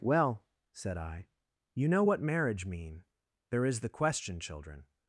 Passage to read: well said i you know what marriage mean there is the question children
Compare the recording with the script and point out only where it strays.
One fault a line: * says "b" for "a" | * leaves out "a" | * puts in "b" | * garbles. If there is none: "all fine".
all fine